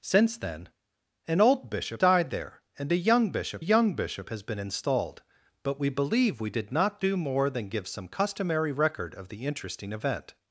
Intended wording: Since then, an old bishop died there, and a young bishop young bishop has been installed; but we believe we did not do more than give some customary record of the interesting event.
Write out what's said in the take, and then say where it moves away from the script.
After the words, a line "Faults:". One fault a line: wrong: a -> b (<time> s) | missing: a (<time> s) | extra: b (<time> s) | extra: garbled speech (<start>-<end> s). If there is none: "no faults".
Since then, an old bishop died there, and a young bishop young bishop has been installed; but we believe we did not do more than give some customary record of the interesting event.
Faults:
no faults